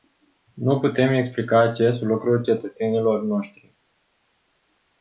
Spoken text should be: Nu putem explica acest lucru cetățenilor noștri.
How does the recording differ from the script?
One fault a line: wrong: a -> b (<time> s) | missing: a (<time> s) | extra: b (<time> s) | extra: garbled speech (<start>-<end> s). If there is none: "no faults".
no faults